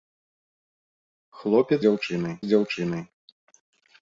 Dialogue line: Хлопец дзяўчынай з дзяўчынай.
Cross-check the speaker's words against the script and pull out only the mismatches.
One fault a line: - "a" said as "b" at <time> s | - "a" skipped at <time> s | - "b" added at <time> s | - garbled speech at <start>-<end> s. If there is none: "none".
none